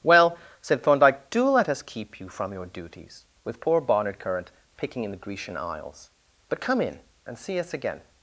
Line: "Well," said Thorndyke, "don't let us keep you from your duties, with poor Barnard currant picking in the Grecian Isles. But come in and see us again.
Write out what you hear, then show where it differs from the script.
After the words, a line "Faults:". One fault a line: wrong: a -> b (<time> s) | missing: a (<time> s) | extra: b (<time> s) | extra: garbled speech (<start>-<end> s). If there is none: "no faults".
"Well," said Thorndyke, "do let us keep you from your duties, with poor Barnard currant picking in the Grecian Isles. But come in and see us again.
Faults:
wrong: don't -> do (1.3 s)